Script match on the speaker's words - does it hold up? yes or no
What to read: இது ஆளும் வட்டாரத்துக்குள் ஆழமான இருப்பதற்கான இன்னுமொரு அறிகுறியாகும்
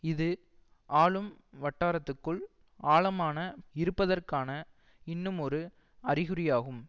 yes